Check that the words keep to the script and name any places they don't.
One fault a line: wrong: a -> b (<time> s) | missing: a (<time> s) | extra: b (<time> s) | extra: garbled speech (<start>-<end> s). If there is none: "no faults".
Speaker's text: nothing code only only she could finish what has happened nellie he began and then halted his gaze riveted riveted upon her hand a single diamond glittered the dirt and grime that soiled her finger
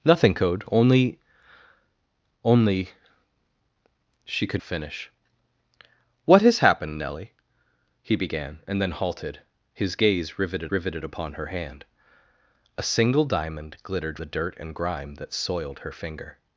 no faults